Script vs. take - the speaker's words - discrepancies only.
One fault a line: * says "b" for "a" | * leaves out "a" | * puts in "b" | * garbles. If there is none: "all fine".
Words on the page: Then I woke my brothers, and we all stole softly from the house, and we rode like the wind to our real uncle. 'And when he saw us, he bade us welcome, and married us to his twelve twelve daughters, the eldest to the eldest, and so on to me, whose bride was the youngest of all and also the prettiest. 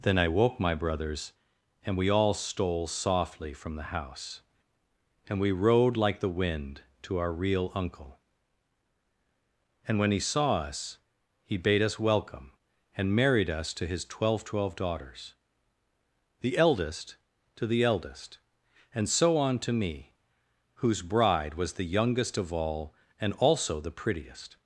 all fine